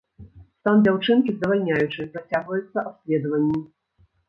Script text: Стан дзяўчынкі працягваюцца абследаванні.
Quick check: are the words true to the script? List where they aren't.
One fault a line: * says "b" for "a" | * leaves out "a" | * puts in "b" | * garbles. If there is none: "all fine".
* puts in "здавальняючы"